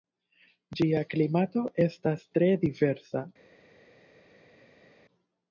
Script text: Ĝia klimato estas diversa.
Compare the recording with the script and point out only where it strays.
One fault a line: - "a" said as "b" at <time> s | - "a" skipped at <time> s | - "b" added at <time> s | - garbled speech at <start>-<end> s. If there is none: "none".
- "tre" added at 2.4 s